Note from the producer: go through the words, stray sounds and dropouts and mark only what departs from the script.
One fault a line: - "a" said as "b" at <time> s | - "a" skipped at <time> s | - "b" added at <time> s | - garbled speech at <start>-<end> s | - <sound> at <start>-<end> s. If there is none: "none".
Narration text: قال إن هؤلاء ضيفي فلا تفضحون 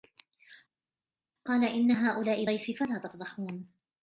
none